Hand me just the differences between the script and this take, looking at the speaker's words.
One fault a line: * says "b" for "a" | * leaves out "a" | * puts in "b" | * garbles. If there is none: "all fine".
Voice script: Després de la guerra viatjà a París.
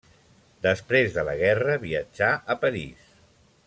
all fine